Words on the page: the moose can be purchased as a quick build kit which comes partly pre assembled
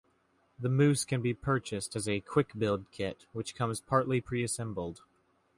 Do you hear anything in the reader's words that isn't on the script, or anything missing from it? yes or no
no